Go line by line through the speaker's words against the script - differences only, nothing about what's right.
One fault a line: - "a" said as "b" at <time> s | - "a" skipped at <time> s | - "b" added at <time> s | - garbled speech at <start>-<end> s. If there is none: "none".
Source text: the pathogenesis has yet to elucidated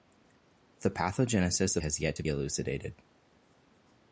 none